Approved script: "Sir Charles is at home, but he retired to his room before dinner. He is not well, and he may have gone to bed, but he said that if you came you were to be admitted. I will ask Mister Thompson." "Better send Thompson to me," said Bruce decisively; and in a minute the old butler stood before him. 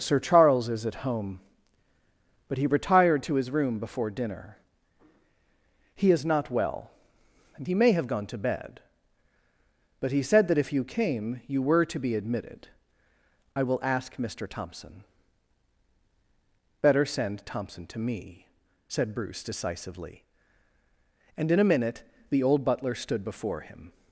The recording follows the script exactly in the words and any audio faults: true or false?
true